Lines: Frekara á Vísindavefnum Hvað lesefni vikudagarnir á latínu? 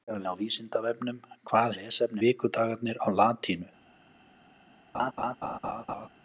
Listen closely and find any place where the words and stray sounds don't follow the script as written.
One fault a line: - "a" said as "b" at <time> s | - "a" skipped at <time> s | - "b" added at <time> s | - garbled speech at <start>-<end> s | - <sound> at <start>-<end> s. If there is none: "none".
- laugh at 4.9-6.1 s